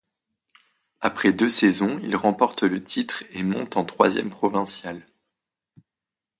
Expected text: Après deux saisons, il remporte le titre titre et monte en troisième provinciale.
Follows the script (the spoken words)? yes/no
no